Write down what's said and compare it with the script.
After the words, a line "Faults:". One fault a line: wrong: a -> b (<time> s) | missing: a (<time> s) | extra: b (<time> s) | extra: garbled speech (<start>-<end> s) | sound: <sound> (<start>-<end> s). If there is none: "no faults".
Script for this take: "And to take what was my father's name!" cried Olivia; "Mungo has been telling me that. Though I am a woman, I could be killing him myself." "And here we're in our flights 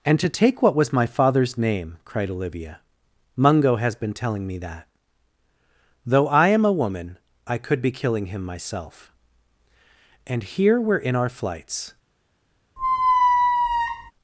"And to take what was my father's name!" cried Olivia; "Mungo has been telling me that. Though I am a woman, I could be killing him myself." "And here we're in our flights
Faults:
sound: squeak (12.8-14.1 s)